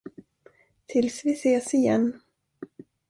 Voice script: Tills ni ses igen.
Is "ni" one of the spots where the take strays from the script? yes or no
yes